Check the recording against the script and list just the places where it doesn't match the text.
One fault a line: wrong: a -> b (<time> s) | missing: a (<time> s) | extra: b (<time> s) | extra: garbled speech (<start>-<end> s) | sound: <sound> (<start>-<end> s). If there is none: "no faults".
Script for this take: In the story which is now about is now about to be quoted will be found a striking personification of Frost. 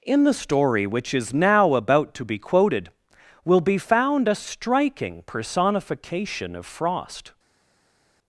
missing: is now about (2.1 s)